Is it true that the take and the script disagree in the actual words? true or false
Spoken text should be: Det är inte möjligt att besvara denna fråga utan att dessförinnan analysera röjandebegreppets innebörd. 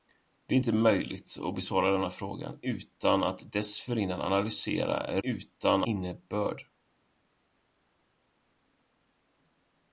true